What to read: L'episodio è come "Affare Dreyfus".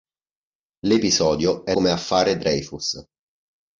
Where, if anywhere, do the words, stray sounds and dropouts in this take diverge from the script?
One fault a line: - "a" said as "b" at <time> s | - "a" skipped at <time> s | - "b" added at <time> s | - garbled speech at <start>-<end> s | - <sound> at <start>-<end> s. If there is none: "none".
none